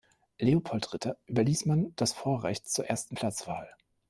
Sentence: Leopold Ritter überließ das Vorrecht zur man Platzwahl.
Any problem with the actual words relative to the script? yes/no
yes